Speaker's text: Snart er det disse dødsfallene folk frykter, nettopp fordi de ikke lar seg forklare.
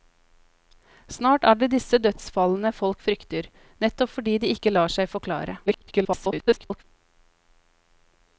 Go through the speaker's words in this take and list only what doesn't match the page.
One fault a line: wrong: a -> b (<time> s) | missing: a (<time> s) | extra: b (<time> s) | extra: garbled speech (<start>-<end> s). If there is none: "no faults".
extra: garbled speech (5.7-6.8 s)